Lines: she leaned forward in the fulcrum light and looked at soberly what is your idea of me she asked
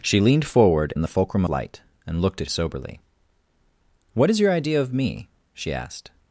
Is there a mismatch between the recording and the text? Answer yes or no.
no